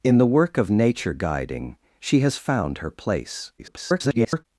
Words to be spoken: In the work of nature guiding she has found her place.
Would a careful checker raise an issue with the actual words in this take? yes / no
yes